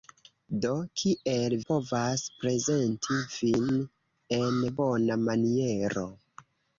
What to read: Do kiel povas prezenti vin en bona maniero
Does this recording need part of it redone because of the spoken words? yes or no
no